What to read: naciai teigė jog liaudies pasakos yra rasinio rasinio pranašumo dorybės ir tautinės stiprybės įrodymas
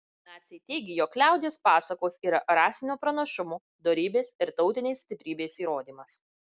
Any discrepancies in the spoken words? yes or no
yes